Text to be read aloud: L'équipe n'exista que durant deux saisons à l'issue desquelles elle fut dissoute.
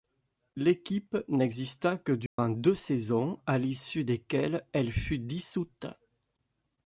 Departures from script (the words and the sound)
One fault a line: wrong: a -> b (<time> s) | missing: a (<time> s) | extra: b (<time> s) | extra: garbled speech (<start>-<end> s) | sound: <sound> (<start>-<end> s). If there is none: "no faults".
sound: dropout (2.3-2.4 s)